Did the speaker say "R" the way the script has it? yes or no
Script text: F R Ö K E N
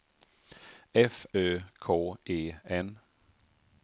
no